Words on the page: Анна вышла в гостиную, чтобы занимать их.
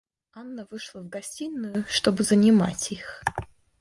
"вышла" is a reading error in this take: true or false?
false